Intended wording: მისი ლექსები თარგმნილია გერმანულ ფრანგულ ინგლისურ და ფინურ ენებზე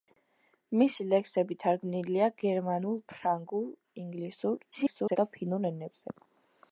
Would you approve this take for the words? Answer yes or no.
no